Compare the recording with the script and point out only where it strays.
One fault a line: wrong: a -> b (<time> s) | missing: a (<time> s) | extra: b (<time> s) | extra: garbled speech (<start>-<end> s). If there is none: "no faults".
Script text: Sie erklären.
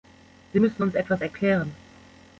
extra: müssen uns etwas (0.6 s)